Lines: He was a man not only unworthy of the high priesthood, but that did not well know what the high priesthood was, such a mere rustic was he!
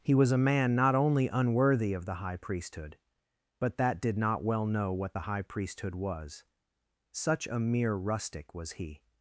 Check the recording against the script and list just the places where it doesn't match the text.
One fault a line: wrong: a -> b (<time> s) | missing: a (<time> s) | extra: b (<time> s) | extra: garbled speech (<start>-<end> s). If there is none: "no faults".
no faults